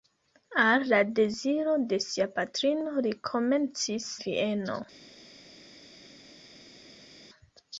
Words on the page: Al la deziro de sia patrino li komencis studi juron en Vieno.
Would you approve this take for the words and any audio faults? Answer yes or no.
no